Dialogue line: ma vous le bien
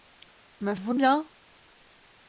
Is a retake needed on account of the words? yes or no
no